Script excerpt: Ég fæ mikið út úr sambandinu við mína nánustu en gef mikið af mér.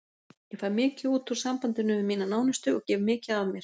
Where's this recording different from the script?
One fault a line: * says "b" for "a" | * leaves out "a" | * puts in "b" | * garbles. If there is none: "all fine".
* says "og" for "en"